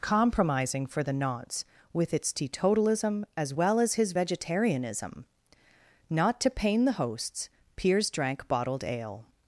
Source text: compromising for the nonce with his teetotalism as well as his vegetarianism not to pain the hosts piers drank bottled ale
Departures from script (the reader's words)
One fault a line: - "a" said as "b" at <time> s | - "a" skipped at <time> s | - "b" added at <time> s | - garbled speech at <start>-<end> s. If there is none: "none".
- "his" said as "its" at 2.1 s